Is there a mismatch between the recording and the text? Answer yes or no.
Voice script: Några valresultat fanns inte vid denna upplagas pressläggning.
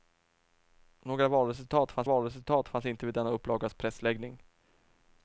yes